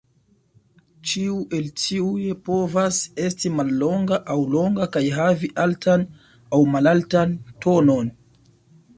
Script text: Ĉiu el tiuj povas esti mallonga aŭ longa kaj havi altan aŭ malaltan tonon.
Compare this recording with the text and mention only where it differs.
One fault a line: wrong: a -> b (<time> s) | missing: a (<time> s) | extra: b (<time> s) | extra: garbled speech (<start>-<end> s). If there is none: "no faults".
no faults